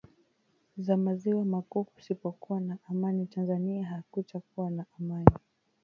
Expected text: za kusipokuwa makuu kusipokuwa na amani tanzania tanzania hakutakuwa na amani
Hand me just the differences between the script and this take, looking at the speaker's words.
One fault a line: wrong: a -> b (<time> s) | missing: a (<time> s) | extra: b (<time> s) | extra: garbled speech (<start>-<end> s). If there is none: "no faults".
wrong: kusipokuwa -> maziwa (1.0 s)
missing: tanzania (3.8 s)